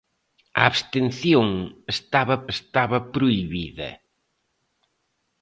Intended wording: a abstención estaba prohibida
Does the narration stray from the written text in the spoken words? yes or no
yes